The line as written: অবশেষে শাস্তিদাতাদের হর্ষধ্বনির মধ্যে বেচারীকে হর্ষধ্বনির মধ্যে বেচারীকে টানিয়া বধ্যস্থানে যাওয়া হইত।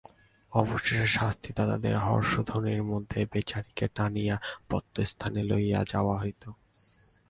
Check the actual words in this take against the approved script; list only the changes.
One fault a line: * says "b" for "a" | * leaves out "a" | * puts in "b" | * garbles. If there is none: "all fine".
* leaves out "হর্ষধ্বনির মধ্যে বেচারীকে"
* puts in "লইয়া"